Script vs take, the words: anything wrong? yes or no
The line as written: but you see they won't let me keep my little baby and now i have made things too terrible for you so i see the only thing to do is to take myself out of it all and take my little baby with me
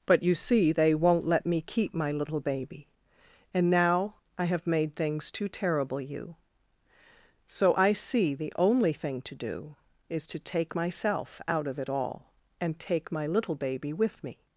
yes